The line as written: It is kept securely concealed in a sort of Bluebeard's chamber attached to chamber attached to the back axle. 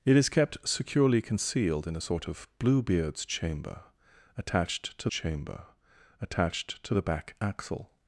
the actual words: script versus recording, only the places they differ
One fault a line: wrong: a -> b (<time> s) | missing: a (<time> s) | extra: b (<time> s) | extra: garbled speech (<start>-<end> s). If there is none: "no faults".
no faults